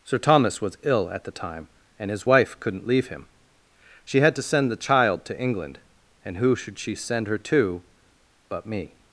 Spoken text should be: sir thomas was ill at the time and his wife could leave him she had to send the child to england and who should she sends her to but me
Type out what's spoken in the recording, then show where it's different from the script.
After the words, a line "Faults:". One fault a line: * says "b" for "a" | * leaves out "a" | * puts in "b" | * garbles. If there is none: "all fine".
sir thomas was ill at the time and his wife couldn't leave him she had to send the child to england and who should she send her to but me
Faults:
* says "couldn't" for "could"
* says "send" for "sends"